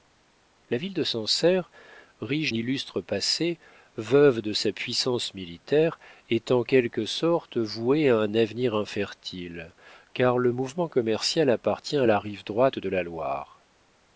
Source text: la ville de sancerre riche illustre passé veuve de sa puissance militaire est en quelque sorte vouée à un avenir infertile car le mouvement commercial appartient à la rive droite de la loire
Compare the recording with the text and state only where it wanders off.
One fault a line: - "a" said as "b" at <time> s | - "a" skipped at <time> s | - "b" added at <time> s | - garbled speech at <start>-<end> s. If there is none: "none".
none